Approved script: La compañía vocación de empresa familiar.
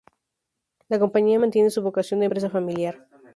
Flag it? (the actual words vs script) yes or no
yes